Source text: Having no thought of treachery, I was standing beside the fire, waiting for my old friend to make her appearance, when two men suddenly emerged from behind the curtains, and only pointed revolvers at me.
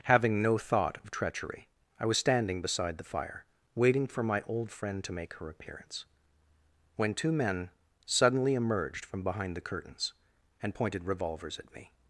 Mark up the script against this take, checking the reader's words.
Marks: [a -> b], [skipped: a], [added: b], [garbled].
Having no thought of treachery, I was standing beside the fire, waiting for my old friend to make her appearance, when two men suddenly emerged from behind the curtains, and [skipped: only] pointed revolvers at me.